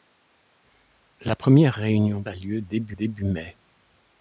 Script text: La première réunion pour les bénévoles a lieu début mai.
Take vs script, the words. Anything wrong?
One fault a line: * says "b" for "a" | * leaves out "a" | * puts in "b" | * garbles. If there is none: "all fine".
* leaves out "pour les bénévoles"
* puts in "début"